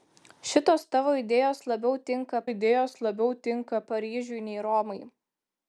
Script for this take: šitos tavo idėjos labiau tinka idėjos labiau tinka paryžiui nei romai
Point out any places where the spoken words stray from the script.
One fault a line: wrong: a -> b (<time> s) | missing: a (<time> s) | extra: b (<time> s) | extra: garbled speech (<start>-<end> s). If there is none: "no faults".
no faults